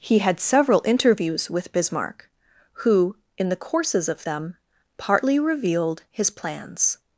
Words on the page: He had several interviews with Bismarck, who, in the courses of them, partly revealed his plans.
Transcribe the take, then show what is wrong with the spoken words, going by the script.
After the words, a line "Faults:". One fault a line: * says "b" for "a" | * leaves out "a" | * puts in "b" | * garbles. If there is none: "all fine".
He had several interviews with Bismarck, who, in the courses of them, partly revealed his plans.
Faults:
all fine